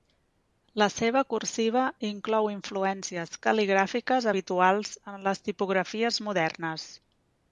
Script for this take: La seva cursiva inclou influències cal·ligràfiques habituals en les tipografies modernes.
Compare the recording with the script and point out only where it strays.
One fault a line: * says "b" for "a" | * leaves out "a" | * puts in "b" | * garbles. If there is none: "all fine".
all fine